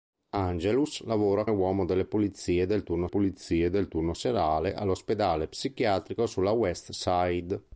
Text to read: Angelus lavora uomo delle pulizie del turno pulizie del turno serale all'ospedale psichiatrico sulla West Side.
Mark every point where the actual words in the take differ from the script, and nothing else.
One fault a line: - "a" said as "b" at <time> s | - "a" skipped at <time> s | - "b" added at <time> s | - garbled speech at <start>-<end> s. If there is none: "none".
none